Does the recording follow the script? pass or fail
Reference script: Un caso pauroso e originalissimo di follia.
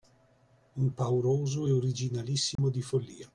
fail